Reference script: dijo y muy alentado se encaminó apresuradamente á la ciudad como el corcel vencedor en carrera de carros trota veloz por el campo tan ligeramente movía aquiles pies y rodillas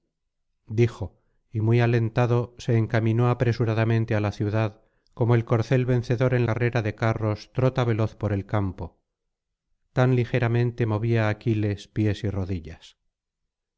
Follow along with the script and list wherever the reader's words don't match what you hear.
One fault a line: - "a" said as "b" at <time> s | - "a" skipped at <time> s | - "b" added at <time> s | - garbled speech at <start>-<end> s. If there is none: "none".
none